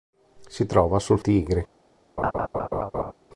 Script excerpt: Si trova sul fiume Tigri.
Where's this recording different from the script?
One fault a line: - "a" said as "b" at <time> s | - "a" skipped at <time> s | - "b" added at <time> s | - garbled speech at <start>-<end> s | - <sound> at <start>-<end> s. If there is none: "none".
- "fiume" skipped at 1.2 s
- laugh at 2.2-3.1 s